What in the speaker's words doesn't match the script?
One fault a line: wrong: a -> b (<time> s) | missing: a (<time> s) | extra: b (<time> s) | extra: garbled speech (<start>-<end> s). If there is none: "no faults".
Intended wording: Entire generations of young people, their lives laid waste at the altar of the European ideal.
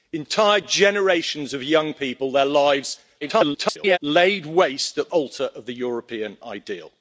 extra: garbled speech (3.2-4.0 s)
missing: the (5.1 s)